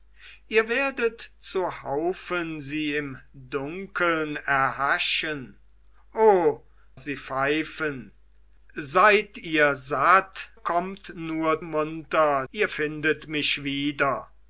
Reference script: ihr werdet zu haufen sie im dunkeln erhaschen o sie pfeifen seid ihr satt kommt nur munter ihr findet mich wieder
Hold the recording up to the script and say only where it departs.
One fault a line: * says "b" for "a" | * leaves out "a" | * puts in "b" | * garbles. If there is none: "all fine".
all fine